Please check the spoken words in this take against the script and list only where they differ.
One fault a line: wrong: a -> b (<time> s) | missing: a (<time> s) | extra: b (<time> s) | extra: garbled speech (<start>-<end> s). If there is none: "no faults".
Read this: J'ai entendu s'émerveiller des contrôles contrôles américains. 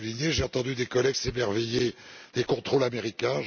extra: des collègues (0.7 s)
missing: contrôles (2.8 s)